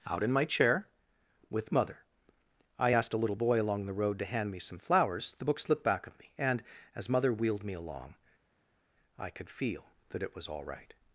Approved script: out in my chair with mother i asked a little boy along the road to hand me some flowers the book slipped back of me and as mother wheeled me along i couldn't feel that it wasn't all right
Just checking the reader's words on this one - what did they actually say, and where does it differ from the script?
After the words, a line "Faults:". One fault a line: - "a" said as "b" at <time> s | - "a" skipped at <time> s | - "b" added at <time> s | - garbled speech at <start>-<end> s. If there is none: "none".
out in my chair with mother i asked a little boy along the road to hand me some flowers the book slipped back of me and as mother wheeled me along i could feel that it was all right
Faults:
- "couldn't" said as "could" at 9.3 s
- "wasn't" said as "was" at 10.3 s